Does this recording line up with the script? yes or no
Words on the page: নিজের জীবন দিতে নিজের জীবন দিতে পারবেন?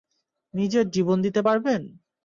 no